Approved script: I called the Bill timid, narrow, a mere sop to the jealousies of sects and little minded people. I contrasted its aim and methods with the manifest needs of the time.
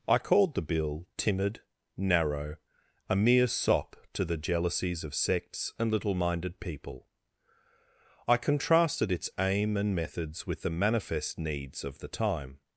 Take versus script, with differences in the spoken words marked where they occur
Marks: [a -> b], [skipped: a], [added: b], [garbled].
I called the Bill timid, narrow, a mere sop to the jealousies of sects and little minded people. I contrasted its aim and methods with the manifest needs of the time.